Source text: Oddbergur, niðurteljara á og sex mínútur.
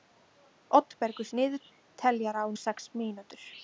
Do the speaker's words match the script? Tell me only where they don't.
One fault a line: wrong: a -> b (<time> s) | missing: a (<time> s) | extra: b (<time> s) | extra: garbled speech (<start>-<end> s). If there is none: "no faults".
no faults